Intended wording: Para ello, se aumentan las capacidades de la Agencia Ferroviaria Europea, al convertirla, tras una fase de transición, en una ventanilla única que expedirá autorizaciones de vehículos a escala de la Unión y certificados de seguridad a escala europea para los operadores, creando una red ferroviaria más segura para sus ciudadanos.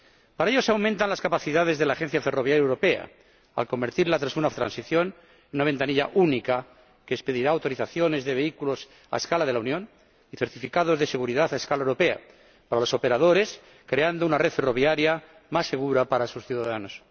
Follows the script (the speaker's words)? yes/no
no